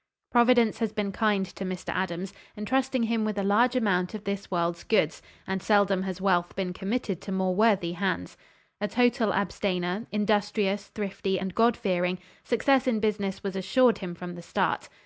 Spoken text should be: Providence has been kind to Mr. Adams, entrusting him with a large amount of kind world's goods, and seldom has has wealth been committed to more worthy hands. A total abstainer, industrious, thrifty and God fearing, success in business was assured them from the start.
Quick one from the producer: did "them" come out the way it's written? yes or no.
no